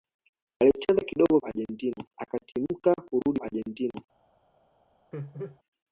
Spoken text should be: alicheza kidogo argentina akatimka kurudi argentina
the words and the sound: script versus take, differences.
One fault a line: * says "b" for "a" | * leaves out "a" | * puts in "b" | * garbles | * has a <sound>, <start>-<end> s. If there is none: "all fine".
* has a laugh, 5.1-5.6 s